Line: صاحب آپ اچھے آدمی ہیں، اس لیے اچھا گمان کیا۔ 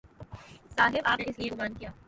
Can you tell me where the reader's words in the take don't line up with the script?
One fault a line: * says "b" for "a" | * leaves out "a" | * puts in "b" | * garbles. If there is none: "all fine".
* leaves out "اچھے آدمی"
* leaves out "اچھا"